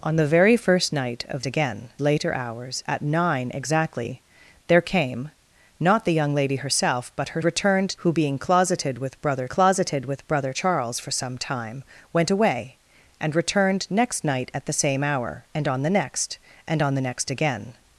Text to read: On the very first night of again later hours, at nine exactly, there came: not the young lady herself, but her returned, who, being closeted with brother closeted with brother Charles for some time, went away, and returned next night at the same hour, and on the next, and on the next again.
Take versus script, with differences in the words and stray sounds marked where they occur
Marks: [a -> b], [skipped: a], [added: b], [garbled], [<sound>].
On the very first night of again later hours, at nine exactly, there came: not the young lady herself, but her returned, who, being closeted with brother closeted with brother Charles for some time, went away, and returned next night at the same hour, and on the next, and on the next again.